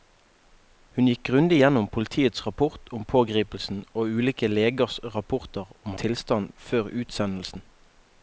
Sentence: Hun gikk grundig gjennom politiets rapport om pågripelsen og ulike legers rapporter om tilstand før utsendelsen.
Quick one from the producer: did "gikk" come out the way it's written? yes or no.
yes